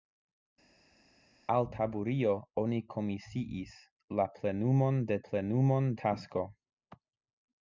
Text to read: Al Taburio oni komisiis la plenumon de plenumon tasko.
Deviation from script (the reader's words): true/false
false